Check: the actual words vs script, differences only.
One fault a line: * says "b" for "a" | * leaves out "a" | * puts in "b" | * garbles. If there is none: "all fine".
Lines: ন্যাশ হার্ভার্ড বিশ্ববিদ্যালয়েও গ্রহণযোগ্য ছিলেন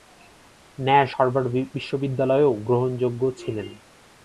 all fine